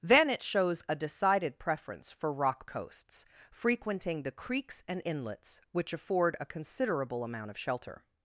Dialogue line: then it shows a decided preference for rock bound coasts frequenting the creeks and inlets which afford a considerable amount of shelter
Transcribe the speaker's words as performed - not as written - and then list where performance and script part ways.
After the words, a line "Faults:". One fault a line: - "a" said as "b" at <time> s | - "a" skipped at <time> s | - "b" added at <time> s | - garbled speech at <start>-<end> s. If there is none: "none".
then it shows a decided preference for rock coasts frequenting the creeks and inlets which afford a considerable amount of shelter
Faults:
- "bound" skipped at 2.7 s